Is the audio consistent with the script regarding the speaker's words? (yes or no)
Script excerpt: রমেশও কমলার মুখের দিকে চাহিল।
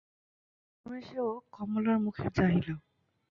no